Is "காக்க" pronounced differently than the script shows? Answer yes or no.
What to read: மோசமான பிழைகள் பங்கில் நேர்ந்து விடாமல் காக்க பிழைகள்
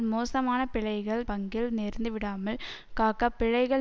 no